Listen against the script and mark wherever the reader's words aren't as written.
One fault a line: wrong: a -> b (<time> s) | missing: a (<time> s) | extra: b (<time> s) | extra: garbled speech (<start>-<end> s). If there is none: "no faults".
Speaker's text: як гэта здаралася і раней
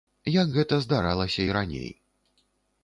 no faults